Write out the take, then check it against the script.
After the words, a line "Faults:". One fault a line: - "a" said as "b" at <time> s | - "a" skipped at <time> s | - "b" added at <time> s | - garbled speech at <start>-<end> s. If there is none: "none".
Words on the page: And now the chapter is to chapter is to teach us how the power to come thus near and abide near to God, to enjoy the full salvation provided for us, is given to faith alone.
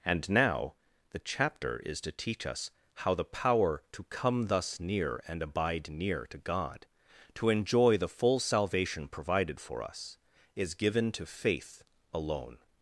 And now the chapter is to teach us how the power to come thus near and abide near to God, to enjoy the full salvation provided for us, is given to faith alone.
Faults:
- "chapter is to" skipped at 2.1 s